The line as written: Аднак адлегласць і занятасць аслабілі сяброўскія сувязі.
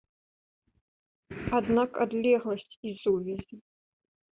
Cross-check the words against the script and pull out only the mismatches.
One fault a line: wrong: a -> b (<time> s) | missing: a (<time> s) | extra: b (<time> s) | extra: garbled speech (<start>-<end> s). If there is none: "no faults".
missing: занятасць аслабілі сяброўскія (3.0 s)